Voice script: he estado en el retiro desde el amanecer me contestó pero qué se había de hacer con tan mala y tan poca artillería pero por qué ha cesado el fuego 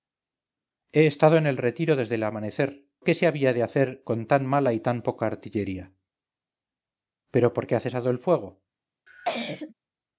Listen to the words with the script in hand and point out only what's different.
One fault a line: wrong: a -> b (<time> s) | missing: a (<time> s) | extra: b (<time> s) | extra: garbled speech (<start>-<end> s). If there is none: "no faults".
missing: me contestó pero (2.9 s)